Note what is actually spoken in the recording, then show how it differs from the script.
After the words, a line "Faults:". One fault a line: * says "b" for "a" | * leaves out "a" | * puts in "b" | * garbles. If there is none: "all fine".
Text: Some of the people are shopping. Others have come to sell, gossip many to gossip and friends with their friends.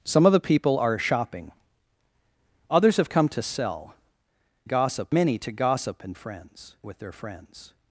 Some of the people are shopping. Others have come to sell, gossip many to gossip and friends with their friends.
Faults:
all fine